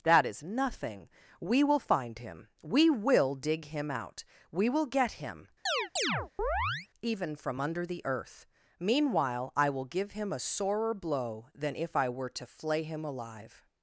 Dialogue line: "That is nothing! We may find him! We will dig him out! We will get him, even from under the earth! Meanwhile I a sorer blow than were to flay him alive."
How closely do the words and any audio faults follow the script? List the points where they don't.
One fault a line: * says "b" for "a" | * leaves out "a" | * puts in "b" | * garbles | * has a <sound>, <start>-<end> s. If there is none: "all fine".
* says "will" for "may"
* has a chirp, 5.7-6.9 s
* puts in "will give him"
* puts in "if I"